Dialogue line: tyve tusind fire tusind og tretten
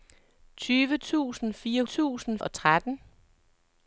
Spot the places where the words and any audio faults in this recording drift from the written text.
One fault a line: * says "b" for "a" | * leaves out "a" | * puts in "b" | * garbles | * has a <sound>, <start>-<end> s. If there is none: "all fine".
all fine